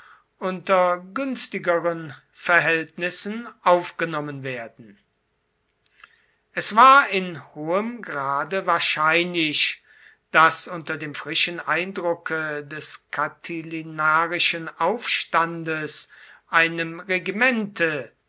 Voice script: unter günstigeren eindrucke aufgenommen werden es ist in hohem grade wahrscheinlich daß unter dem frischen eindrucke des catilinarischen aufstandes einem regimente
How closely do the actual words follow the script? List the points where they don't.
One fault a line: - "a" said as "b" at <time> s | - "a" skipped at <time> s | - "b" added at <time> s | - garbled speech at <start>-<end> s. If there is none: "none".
- "eindrucke" said as "verhältnissen" at 2.3 s
- "ist" said as "war" at 6.8 s